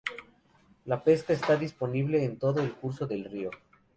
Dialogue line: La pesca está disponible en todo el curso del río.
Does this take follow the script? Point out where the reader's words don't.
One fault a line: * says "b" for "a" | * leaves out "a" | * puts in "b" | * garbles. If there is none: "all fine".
all fine